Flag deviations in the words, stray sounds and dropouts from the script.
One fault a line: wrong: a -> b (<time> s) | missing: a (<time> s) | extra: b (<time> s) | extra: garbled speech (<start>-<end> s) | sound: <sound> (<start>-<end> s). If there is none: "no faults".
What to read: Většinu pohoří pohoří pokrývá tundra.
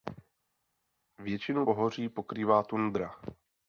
missing: pohoří (2.1 s)